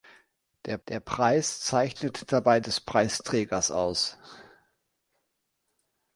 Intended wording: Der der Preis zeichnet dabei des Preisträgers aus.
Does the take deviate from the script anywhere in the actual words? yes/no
no